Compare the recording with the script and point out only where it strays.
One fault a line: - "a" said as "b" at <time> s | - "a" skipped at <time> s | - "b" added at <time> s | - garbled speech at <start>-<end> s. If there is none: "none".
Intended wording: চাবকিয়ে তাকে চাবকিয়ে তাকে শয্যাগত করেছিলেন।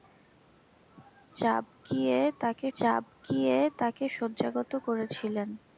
none